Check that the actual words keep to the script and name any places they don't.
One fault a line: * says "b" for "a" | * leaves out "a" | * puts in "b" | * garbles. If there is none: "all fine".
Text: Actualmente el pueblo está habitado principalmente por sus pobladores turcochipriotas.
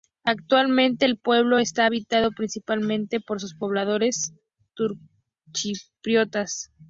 all fine